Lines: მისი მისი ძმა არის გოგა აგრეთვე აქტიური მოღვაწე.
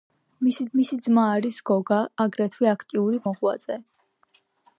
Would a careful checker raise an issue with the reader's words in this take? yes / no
no